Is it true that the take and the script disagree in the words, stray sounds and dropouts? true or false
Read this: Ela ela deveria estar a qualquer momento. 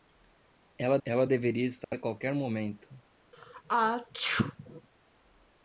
true